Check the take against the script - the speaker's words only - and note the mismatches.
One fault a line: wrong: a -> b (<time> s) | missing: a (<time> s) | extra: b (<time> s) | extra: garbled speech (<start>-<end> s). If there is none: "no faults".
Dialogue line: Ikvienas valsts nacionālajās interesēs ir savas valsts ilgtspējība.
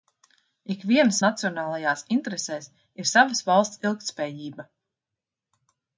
missing: valsts (1.2 s)